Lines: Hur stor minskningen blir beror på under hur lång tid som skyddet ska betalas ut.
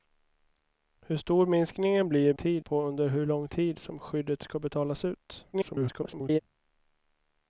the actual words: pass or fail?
fail